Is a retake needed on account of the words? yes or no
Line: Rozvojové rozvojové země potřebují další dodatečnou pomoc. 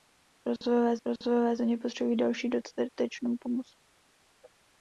no